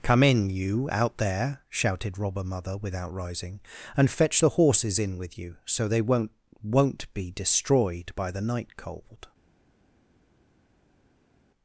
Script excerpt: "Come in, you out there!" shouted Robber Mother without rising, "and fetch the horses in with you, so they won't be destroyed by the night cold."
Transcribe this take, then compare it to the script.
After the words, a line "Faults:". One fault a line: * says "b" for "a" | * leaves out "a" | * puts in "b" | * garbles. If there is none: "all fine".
"Come in, you out there!" shouted Robber Mother without rising, "and fetch the horses in with you, so they won't won't be destroyed by the night cold."
Faults:
* puts in "won't"